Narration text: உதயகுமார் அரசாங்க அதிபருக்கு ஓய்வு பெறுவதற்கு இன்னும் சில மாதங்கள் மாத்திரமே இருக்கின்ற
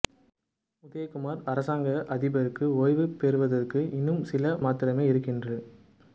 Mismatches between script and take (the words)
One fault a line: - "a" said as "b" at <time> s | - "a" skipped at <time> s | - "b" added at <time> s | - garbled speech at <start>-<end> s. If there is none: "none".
- "மாதங்கள்" skipped at 4.4 s